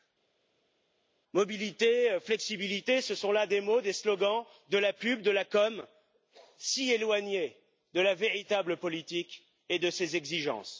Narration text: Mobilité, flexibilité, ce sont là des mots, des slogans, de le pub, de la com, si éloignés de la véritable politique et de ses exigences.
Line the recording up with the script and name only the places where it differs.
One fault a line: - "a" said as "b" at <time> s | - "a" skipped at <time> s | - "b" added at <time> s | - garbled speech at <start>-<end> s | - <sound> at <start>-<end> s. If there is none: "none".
- "le" said as "la" at 4.8 s